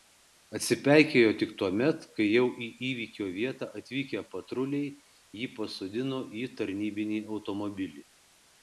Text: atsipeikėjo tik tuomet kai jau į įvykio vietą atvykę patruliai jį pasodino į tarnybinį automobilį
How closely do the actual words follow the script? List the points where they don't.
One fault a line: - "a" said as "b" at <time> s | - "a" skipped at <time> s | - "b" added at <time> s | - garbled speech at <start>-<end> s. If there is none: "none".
none